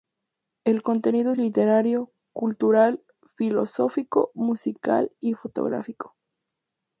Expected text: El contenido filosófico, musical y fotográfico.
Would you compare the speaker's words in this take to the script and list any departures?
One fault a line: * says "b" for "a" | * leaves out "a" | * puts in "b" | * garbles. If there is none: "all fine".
* puts in "es literario cultural"